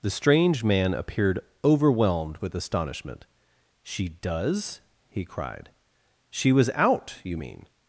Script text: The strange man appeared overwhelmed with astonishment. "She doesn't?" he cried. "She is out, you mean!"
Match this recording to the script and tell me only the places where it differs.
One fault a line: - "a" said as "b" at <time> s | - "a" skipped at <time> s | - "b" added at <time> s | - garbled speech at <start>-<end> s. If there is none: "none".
- "doesn't" said as "does" at 4.1 s
- "is" said as "was" at 6.5 s